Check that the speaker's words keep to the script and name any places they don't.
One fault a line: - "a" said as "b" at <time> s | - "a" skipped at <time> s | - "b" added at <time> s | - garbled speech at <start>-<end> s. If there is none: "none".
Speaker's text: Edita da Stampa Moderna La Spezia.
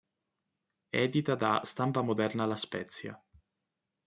none